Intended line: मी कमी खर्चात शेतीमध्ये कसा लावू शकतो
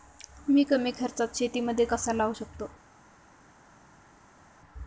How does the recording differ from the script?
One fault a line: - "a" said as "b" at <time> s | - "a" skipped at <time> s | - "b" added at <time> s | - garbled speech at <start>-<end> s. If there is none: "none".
none